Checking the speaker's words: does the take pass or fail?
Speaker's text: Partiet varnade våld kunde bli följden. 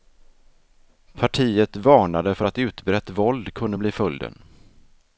fail